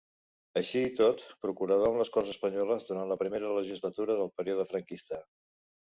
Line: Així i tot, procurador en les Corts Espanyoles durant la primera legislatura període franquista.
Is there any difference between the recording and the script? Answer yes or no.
yes